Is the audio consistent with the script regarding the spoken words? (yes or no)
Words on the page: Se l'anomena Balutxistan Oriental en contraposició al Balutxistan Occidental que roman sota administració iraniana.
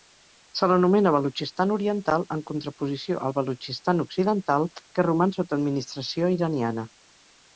yes